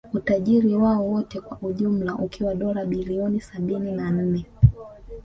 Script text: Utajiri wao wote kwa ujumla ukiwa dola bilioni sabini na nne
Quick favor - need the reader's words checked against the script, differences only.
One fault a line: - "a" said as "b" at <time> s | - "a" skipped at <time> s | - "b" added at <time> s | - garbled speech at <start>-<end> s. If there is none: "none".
none